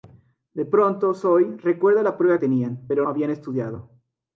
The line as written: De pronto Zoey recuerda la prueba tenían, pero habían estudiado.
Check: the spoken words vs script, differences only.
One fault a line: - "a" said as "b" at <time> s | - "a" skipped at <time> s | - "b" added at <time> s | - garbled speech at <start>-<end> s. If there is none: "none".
none